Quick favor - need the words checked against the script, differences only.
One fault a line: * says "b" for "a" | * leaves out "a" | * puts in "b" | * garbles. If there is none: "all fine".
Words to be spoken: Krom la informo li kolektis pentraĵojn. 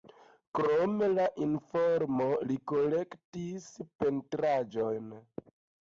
all fine